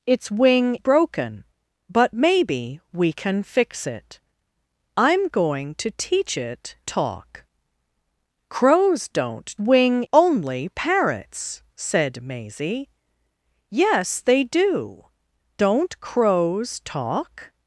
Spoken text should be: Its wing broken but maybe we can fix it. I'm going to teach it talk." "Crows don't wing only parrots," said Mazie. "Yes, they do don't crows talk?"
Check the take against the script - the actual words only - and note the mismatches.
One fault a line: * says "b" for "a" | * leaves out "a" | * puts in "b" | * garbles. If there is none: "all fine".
all fine